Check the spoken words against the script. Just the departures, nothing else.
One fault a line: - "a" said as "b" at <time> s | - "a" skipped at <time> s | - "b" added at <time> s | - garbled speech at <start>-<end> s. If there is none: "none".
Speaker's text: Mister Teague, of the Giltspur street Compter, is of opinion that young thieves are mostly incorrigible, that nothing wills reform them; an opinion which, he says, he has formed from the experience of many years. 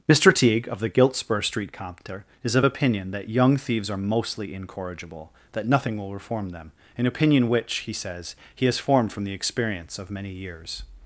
- "wills" said as "will" at 6.0 s